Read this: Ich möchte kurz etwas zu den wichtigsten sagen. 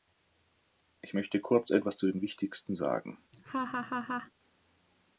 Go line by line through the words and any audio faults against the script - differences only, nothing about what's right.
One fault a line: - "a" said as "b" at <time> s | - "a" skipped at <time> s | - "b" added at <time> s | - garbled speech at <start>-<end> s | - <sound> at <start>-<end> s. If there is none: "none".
- laugh at 3.3-4.3 s